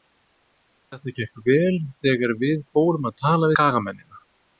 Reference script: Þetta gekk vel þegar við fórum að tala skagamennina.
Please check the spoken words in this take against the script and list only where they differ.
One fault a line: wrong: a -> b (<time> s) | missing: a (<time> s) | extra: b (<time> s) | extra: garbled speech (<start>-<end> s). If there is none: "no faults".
no faults